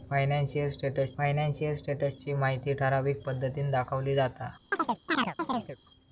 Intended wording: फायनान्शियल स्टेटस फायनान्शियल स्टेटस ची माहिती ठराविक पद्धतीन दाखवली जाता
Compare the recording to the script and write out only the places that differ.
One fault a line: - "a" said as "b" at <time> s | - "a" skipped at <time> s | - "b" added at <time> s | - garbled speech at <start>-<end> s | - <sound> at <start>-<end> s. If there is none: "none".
- chirp at 4.7-5.8 s